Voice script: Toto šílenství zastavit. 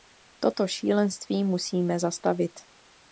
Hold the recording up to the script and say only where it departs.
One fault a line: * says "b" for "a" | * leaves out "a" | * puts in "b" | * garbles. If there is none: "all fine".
* puts in "musíme"